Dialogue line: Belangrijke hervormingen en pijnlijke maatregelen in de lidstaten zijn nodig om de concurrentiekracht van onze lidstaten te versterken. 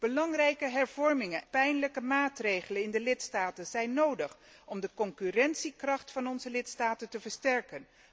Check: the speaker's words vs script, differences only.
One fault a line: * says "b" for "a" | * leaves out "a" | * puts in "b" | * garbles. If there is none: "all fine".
* leaves out "en"